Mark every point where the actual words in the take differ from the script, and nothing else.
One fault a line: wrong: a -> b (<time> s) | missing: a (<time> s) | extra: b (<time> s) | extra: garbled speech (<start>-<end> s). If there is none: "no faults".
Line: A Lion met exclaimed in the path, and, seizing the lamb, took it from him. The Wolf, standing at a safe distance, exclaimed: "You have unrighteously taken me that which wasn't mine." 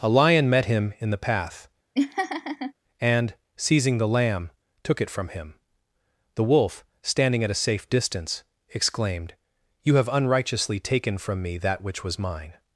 wrong: exclaimed -> him (0.7 s)
extra: from (11.2 s)
wrong: wasn't -> was (12.0 s)